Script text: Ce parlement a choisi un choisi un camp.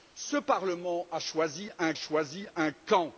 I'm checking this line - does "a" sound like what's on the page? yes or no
yes